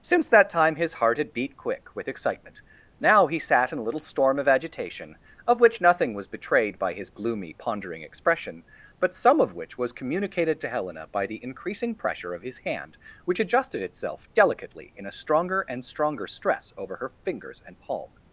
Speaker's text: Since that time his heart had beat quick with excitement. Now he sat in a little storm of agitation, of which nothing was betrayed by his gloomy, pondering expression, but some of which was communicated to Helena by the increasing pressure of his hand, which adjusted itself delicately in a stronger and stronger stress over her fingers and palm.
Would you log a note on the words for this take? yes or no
no